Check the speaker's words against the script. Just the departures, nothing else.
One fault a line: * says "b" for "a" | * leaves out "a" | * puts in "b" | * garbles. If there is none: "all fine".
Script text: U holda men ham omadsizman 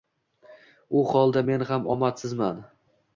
all fine